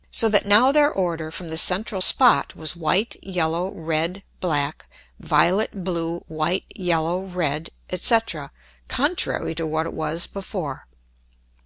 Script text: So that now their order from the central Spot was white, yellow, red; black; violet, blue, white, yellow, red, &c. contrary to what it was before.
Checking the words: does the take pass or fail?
pass